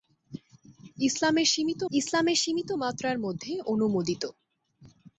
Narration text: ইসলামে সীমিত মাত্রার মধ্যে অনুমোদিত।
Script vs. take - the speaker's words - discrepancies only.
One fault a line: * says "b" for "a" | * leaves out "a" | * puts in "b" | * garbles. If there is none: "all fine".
* puts in "ইসলামে সীমিত"